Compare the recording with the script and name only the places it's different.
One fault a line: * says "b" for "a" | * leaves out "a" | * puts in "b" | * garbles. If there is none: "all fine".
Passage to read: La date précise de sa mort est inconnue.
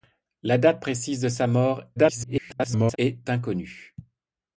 * garbles